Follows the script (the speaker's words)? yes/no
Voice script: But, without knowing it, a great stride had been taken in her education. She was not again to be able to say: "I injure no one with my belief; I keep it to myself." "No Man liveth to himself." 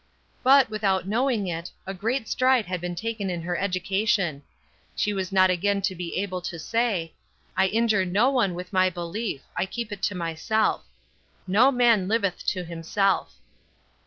yes